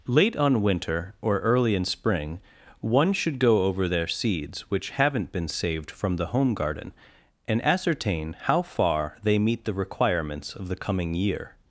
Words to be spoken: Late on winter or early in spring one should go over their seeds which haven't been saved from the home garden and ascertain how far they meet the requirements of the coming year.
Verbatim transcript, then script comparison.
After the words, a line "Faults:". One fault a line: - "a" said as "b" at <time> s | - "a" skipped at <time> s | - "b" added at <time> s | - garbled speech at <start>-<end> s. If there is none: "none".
Late on winter or early in spring one should go over their seeds which haven't been saved from the home garden and ascertain how far they meet the requirements of the coming year.
Faults:
none